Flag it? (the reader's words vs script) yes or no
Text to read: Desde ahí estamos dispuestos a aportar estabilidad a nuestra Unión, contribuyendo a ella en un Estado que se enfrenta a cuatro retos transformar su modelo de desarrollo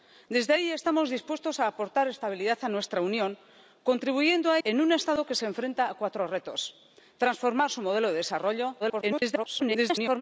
yes